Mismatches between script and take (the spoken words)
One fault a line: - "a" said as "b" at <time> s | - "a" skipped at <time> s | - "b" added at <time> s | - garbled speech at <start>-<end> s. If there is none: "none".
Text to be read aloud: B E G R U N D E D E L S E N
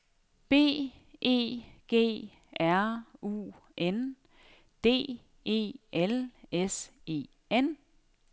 - "D E" skipped at 5.7 s